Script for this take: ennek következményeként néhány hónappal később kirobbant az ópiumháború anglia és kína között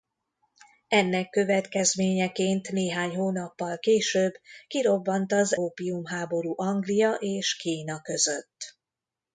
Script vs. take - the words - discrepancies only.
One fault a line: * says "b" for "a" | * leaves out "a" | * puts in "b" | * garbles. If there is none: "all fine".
all fine